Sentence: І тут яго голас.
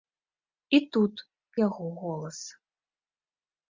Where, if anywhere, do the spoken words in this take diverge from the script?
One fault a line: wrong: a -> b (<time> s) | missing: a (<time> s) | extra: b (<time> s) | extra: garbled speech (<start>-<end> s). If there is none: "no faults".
no faults